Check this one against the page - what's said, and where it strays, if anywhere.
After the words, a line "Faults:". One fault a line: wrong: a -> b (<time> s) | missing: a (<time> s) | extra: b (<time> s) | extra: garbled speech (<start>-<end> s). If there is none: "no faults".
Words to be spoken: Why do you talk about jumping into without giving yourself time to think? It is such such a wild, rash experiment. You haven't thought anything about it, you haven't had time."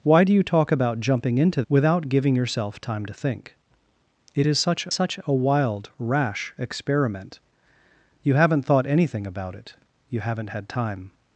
Why do you talk about jumping into without giving yourself time to think? It is such such a wild, rash experiment. You haven't thought anything about it, you haven't had time."
Faults:
no faults